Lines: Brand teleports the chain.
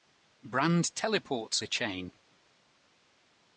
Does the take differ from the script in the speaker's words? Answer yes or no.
no